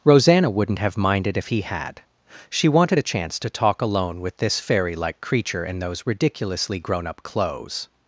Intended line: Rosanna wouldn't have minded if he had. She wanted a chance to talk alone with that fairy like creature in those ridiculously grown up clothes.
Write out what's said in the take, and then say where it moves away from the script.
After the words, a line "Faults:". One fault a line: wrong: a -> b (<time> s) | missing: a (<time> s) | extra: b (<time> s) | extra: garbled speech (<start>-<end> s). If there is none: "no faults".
Rosanna wouldn't have minded if he had. She wanted a chance to talk alone with this fairy like creature in those ridiculously grown up clothes.
Faults:
wrong: that -> this (4.4 s)